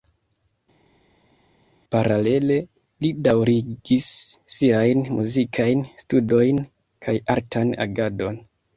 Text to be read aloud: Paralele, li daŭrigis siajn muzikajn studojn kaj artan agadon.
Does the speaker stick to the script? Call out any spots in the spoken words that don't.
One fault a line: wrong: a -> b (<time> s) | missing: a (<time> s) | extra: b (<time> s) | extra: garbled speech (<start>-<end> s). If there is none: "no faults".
no faults